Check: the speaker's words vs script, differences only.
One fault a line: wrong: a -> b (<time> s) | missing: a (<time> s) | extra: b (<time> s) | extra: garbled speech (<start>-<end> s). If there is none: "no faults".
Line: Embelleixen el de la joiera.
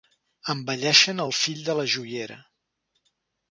extra: fill (1.4 s)